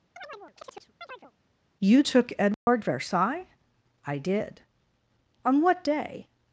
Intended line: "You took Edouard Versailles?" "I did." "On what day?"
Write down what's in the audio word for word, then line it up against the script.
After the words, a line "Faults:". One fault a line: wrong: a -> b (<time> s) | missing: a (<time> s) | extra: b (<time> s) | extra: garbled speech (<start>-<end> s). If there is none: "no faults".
"You took Edouard Versailles?" "I did." "On what day?"
Faults:
no faults